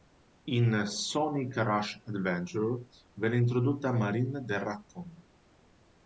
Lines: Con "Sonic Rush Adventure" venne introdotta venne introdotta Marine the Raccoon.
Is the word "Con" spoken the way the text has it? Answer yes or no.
no